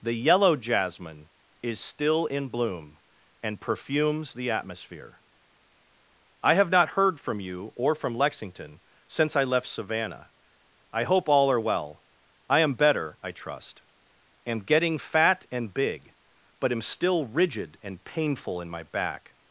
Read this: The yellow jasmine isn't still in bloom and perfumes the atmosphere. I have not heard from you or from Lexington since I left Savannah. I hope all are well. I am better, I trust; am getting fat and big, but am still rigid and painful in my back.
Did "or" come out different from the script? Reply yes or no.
no